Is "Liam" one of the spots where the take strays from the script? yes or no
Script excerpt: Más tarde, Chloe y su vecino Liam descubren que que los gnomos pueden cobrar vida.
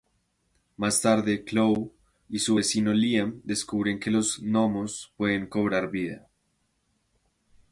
no